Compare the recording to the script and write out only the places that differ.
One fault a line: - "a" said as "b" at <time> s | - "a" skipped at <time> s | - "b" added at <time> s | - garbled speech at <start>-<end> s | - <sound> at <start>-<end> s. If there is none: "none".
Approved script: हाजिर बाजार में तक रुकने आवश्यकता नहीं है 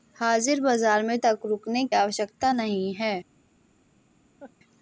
- laugh at 4.4-4.5 s